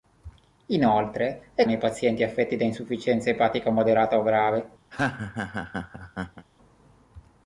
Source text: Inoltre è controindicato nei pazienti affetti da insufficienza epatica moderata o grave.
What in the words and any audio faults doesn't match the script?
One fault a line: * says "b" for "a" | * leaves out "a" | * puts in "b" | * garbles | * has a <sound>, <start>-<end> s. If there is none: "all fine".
* leaves out "controindicato"
* has a laugh, 4.9-6.5 s